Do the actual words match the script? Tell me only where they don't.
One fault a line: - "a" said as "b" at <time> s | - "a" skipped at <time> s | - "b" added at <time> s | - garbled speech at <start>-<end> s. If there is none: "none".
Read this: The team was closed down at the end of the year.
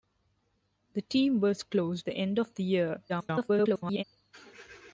- "down at" skipped at 2.1 s
- garbled speech at 3.1-4.0 s